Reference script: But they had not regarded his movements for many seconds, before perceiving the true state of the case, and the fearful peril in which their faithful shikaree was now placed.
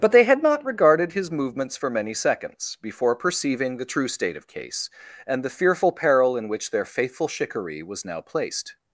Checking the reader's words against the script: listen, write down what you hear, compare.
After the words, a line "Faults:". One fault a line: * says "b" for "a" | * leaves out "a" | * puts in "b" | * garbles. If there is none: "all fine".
But they had not regarded his movements for many seconds, before perceiving the true state of case, and the fearful peril in which their faithful shikaree was now placed.
Faults:
* leaves out "the"